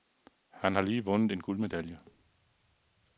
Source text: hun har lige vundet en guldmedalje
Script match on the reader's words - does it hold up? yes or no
no